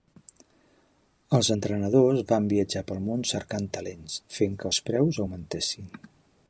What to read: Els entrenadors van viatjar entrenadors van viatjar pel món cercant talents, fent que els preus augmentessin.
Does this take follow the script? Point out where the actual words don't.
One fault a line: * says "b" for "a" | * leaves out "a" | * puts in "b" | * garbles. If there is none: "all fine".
* leaves out "entrenadors van viatjar"